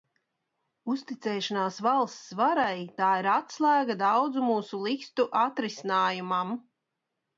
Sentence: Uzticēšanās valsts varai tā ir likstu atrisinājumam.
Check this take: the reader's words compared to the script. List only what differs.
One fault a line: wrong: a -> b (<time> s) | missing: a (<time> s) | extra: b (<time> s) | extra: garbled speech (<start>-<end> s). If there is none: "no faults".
extra: atslēga daudzu mūsu (3.3 s)